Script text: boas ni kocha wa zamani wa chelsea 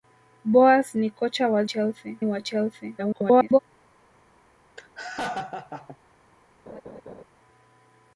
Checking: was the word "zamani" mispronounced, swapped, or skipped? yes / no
yes